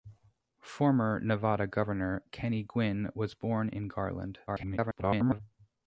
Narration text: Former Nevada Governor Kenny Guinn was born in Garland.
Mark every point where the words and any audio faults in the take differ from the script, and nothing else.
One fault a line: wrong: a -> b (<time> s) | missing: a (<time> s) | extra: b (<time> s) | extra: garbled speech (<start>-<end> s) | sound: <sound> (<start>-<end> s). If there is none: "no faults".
extra: garbled speech (4.5-5.4 s)